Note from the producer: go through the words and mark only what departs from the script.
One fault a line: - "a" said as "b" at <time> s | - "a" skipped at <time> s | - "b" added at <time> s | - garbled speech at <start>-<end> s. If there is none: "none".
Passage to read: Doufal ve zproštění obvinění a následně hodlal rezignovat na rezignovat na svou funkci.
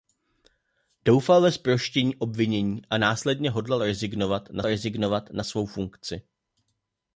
none